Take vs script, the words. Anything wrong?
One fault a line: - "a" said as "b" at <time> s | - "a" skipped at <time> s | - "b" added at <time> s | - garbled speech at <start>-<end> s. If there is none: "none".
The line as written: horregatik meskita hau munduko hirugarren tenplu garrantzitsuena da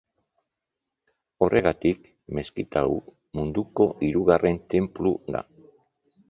- "garrantzitsuena" skipped at 5.1 s